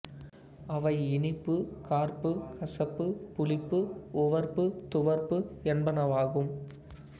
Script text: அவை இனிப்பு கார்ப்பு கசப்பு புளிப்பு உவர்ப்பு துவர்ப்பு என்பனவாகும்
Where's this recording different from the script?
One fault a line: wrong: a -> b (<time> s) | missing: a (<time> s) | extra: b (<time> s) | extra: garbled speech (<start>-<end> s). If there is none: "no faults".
no faults